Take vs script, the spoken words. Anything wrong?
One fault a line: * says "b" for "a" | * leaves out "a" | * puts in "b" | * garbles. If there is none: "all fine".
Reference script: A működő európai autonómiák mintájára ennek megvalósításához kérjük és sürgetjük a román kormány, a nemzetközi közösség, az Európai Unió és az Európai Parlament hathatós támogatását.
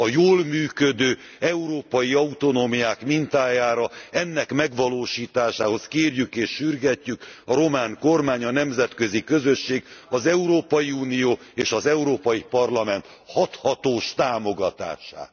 * puts in "jól"